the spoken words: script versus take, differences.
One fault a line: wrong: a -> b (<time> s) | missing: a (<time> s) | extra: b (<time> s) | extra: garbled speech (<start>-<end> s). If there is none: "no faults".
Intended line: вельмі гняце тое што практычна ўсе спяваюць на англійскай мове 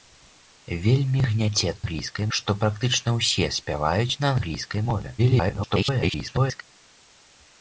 wrong: тое -> англійскай (1.8 s)
extra: garbled speech (5.2-6.6 s)